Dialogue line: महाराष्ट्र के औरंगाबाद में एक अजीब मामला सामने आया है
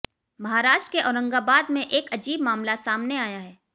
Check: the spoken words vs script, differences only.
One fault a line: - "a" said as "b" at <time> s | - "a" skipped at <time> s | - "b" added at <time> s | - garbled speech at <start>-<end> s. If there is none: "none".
none